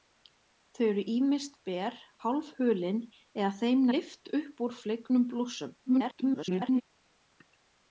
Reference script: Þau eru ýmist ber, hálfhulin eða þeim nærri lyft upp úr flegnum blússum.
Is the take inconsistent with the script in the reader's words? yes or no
yes